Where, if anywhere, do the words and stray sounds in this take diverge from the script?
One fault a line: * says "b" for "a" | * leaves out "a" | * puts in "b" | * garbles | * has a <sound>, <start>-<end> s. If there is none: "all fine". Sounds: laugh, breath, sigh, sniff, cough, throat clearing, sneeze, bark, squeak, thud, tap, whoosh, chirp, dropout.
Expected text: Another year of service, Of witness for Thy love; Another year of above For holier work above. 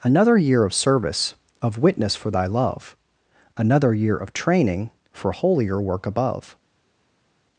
* says "training" for "above"